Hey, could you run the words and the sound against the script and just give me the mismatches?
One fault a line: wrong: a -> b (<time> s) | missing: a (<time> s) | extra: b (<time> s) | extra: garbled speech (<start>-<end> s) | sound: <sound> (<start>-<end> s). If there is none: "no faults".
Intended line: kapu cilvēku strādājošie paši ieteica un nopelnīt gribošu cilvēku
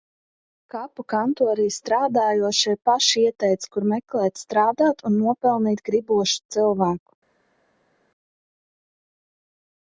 wrong: cilvēku -> kantorī (1.1 s)
extra: kur meklēt strādāt (3.8 s)